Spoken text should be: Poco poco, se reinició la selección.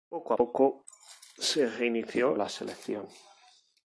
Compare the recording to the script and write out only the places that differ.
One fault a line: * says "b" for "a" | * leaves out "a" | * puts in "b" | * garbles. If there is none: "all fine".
all fine